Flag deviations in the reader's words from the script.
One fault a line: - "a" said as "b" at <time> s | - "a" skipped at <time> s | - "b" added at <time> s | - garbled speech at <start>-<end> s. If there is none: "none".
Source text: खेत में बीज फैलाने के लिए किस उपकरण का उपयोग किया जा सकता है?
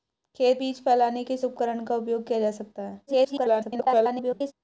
- "में" skipped at 0.6 s
- "के लिए" skipped at 1.2 s
- garbled speech at 3.1-4.5 s